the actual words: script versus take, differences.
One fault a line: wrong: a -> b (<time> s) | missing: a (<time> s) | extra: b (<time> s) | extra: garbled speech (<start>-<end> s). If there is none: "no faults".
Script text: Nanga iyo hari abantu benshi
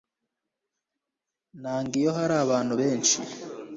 no faults